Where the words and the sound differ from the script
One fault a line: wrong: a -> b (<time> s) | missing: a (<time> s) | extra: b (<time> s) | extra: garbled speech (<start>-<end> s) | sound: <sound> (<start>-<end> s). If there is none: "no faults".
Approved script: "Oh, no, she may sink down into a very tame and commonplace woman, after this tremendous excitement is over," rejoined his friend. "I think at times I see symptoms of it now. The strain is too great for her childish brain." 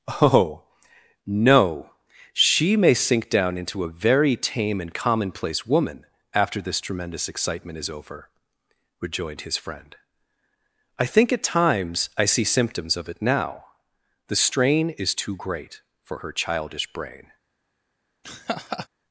sound: laugh (18.2-18.9 s)